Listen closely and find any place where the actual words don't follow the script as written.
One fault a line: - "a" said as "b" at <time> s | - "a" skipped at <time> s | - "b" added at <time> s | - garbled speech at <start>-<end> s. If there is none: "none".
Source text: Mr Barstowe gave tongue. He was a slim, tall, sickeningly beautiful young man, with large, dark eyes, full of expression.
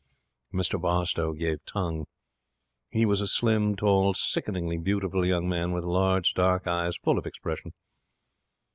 none